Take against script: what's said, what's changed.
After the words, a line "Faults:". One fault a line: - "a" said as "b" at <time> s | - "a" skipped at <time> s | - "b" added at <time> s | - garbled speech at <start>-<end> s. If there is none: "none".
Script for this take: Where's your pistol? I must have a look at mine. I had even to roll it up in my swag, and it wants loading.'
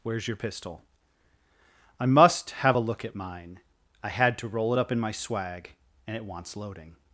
Where's your pistol? I must have a look at mine. I had to roll it up in my swag, and it wants loading.'
Faults:
- "even" skipped at 4.4 s